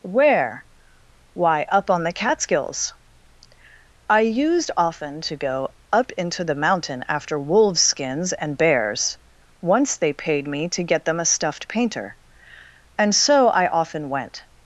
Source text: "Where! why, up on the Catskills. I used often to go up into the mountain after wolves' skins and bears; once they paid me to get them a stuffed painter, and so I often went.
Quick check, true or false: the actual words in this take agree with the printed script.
true